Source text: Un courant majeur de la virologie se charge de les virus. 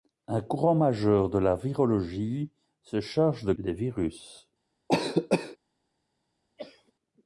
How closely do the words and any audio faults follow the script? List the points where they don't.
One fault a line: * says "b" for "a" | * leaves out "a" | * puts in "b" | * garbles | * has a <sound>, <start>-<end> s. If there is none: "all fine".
* has a cough, 4.9-5.6 s
* has a cough, 6.6-6.9 s